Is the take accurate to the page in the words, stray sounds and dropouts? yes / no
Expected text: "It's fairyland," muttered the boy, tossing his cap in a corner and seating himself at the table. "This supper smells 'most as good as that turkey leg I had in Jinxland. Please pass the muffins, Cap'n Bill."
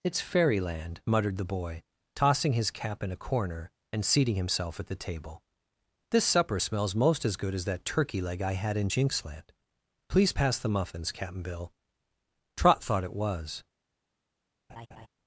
no